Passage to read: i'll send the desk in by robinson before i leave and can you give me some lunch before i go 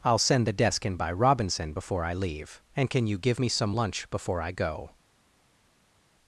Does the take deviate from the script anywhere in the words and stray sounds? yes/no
no